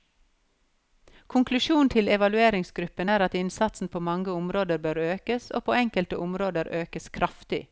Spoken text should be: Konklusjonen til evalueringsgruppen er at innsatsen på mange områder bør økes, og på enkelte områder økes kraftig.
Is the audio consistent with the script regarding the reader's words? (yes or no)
yes